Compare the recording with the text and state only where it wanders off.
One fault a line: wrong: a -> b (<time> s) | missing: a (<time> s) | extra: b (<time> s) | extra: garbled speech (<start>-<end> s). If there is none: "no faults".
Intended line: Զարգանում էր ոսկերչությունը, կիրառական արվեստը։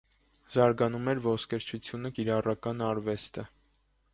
no faults